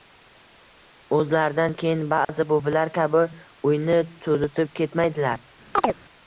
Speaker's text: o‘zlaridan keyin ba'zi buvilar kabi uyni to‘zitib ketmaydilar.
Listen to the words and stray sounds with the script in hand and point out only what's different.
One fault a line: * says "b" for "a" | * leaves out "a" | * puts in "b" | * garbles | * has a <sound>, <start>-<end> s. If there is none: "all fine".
* has a dropout, 2.2-2.3 s
* has a chirp, 5.7-6.0 s